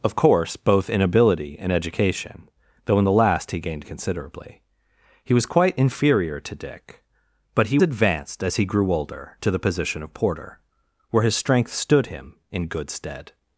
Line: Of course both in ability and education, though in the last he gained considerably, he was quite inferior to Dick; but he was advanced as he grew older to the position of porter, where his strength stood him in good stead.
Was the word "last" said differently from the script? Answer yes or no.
no